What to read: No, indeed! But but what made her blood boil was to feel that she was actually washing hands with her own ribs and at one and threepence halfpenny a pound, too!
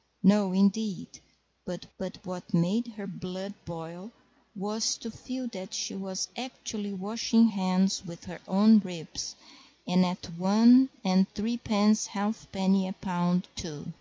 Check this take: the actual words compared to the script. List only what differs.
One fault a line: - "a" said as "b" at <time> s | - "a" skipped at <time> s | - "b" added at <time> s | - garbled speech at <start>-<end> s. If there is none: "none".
none